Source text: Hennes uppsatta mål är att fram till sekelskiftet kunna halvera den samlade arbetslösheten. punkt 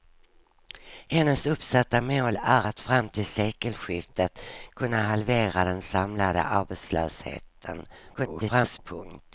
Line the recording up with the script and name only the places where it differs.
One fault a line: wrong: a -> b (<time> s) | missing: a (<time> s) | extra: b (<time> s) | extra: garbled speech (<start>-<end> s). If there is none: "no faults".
extra: garbled speech (8.1-8.8 s)